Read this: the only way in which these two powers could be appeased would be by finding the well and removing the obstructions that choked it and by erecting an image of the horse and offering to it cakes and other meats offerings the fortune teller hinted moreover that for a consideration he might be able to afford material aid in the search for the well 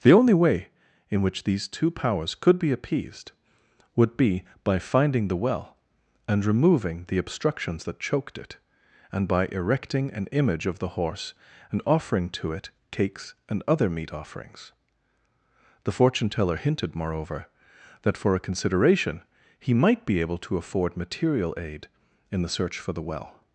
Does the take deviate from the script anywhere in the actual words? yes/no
yes